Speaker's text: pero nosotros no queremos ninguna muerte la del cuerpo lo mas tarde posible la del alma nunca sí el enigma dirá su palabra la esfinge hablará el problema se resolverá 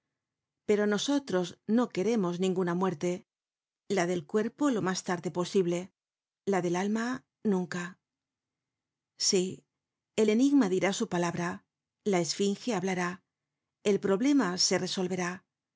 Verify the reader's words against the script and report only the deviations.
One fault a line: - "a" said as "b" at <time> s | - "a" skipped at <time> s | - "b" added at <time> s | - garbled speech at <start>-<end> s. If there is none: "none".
none